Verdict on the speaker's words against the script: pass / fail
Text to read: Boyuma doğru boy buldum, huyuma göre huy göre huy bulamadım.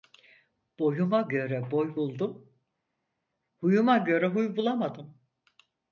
fail